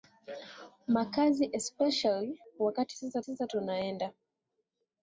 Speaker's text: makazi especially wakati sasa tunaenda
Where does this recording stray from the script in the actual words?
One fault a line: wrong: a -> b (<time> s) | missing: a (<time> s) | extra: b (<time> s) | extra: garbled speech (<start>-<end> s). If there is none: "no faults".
extra: sasa (3.2 s)